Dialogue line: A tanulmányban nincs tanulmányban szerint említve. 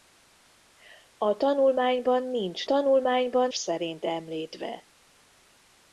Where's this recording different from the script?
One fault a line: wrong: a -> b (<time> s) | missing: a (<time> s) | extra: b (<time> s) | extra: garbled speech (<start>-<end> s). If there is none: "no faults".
no faults